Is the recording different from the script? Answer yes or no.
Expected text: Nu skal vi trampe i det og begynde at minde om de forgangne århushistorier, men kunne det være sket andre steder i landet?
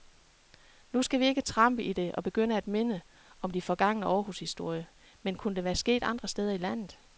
yes